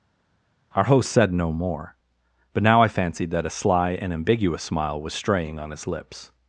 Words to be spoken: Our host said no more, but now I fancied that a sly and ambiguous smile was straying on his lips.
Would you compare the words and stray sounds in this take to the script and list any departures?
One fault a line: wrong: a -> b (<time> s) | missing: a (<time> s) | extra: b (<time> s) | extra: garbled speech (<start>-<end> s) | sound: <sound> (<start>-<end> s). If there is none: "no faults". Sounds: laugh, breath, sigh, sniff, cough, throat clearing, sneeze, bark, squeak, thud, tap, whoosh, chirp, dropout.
no faults